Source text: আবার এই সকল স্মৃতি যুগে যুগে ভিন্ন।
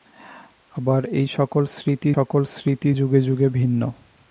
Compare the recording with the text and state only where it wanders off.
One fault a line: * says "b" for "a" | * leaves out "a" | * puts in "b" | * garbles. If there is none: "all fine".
* puts in "সকল স্মৃতি"